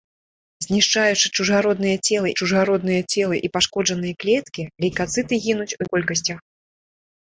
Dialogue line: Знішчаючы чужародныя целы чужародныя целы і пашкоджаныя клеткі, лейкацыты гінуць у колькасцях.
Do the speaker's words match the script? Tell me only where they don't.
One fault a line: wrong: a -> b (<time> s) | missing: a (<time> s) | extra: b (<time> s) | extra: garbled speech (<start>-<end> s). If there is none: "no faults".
no faults